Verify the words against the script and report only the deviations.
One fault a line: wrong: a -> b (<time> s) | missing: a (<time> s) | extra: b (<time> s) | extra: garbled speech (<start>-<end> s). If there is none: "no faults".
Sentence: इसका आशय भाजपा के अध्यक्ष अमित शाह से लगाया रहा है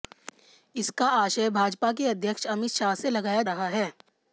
no faults